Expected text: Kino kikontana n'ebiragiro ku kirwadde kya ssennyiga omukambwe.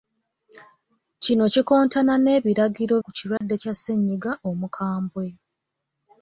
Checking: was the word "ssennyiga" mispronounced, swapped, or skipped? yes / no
no